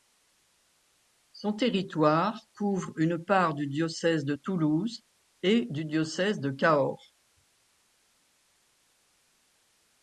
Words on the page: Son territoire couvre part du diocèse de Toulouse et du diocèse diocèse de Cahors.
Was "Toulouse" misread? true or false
false